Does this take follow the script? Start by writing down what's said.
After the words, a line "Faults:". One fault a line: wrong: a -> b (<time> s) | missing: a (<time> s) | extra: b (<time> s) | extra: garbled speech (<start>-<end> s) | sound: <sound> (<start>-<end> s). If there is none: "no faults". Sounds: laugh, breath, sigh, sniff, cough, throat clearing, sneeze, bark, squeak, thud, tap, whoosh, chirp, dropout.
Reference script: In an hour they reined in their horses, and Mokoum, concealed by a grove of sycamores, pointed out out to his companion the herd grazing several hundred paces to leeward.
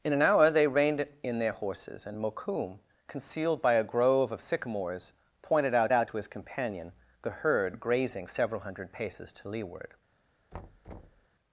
In an hour they reined in their horses, and Mokoum, concealed by a grove of sycamores, pointed out out to his companion the herd grazing several hundred paces to leeward.
Faults:
sound: thud (10.5-11.3 s)